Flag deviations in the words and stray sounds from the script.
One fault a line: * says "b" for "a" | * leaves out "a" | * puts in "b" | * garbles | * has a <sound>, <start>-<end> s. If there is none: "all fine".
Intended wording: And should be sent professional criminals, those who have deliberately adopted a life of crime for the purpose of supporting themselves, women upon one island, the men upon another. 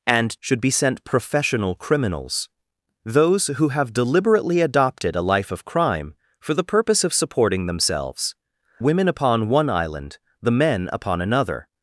all fine